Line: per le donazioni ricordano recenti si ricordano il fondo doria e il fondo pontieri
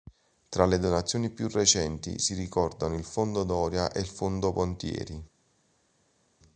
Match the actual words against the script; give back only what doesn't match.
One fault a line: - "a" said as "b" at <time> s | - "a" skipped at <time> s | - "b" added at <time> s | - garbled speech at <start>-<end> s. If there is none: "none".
- "per" said as "tra" at 0.5 s
- "ricordano" said as "più" at 1.3 s